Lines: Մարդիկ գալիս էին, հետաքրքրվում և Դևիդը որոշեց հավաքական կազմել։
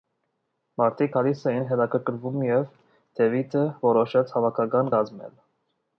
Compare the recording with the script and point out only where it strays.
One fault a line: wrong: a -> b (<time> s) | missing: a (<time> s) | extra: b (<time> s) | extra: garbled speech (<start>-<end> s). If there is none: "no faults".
no faults